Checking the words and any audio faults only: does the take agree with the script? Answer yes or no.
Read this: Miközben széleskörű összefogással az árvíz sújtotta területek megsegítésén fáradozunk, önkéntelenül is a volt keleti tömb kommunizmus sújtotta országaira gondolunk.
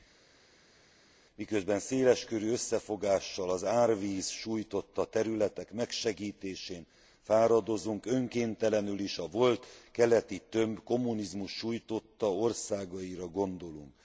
yes